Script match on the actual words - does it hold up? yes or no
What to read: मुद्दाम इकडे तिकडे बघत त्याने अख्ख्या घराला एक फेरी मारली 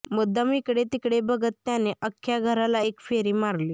yes